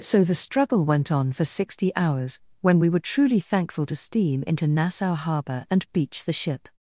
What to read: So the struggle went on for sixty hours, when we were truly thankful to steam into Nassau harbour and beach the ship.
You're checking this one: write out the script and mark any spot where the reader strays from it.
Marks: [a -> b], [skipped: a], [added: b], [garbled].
So the struggle went on for sixty hours, when we were truly thankful to steam into Nassau harbour and beach the ship.